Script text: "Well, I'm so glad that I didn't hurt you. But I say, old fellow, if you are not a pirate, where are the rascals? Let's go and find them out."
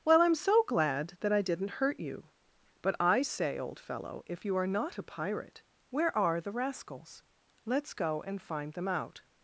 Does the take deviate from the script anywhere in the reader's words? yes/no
no